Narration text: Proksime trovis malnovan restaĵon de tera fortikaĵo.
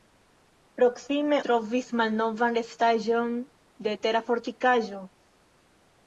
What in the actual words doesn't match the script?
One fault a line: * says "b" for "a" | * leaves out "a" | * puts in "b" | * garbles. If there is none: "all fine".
all fine